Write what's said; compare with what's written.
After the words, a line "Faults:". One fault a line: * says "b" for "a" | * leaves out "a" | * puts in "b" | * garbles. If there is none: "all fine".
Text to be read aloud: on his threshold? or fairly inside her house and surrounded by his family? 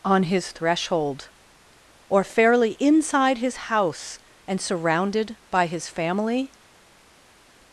on his threshold? or fairly inside his house and surrounded by his family?
Faults:
* says "his" for "her"